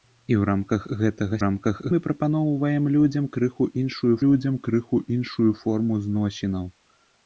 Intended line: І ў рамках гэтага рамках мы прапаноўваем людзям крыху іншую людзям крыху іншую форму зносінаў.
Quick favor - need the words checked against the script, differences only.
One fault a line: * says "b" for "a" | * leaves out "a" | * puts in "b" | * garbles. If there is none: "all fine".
all fine